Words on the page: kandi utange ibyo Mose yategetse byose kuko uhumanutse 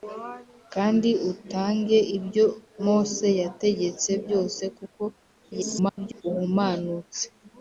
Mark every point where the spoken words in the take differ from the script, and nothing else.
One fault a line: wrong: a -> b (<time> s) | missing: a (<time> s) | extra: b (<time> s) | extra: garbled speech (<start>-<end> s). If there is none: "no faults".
extra: garbled speech (5.5-6.2 s)